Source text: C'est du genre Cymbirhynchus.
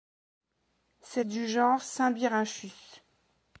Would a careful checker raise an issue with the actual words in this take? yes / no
no